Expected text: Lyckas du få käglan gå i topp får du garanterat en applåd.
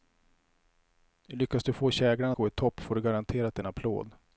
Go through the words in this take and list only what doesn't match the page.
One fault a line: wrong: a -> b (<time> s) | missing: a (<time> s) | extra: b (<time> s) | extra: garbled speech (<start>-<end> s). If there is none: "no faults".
no faults